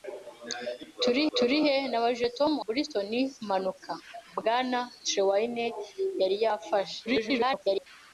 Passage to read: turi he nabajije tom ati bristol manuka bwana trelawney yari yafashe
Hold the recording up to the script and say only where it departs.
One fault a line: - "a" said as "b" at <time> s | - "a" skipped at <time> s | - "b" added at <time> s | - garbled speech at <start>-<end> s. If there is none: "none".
- "turi" added at 1.4 s
- "ati" skipped at 2.5 s
- garbled speech at 7.1-7.9 s